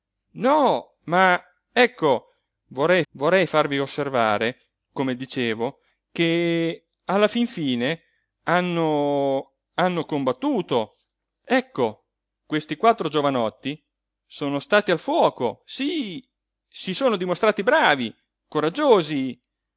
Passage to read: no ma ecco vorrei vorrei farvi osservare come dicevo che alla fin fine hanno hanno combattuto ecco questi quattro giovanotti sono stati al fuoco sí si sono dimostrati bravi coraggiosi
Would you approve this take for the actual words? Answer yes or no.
yes